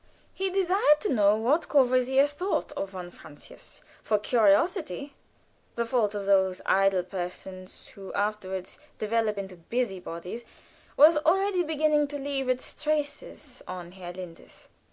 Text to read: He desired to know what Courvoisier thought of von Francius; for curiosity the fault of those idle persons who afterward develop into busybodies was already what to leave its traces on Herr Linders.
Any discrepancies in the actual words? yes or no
yes